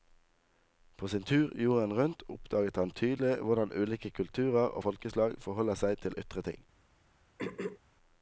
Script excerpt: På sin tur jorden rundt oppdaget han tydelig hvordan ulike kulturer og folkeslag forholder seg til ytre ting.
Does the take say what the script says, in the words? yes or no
yes